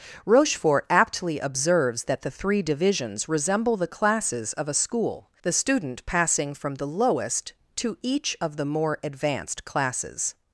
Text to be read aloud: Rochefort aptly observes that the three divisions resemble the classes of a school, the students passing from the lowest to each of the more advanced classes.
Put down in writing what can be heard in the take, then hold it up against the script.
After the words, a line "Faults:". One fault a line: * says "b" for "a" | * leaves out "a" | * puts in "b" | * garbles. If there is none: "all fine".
Rochefort aptly observes that the three divisions resemble the classes of a school, the student passing from the lowest to each of the more advanced classes.
Faults:
* says "student" for "students"